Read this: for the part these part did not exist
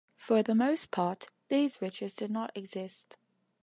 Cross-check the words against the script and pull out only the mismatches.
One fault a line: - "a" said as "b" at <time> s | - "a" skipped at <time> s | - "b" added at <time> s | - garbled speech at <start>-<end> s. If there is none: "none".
- "most" added at 0.6 s
- "part" said as "riches" at 1.8 s